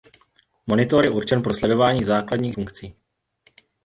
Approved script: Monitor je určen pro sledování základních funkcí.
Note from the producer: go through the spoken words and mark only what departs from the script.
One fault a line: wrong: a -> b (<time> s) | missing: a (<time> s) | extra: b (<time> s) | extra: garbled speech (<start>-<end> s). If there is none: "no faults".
no faults